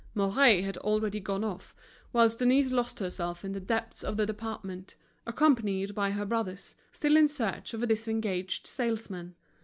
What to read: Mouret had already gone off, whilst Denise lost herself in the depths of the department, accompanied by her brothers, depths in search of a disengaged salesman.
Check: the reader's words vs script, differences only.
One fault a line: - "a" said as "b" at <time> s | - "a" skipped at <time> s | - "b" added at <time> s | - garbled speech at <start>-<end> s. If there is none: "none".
- "depths" said as "still" at 6.9 s